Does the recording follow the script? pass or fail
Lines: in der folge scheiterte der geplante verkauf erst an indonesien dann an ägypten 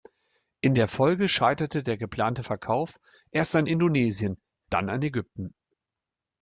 pass